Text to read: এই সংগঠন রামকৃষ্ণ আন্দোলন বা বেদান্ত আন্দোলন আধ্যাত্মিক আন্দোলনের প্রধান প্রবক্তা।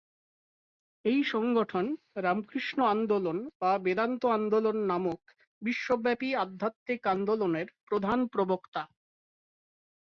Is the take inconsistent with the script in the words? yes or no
yes